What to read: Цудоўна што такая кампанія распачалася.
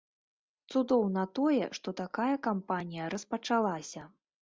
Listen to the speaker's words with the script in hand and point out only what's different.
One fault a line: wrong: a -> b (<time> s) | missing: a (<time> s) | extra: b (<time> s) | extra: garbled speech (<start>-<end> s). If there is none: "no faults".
extra: тое (1.4 s)